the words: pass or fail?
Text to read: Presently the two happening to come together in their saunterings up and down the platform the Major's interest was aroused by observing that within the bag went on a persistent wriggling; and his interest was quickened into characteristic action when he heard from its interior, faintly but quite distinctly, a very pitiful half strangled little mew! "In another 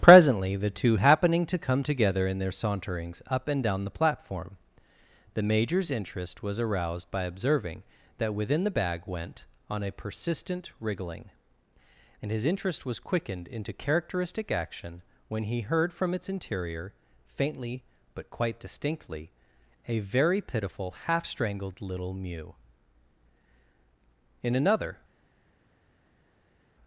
pass